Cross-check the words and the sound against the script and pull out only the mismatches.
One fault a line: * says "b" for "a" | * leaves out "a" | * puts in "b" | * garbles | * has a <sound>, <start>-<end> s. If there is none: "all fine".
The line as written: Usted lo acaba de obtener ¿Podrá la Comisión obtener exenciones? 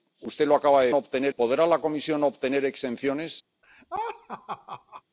* has a laugh, 3.6-5.0 s